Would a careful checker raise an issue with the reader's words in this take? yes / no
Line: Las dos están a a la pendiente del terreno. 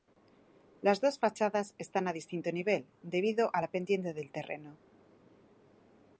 yes